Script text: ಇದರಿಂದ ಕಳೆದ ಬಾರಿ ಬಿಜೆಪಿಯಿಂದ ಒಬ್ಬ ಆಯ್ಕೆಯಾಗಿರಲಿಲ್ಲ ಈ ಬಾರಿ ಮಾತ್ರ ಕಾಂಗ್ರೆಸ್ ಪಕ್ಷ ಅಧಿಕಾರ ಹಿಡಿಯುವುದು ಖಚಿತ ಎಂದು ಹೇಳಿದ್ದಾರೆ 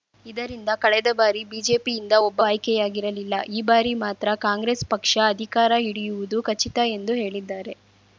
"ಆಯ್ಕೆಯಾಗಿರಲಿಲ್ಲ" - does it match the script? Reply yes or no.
yes